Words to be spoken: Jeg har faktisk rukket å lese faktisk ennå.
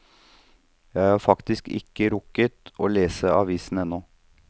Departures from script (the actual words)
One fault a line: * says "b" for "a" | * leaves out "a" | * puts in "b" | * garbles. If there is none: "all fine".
* puts in "ikke"
* says "avisen" for "faktisk"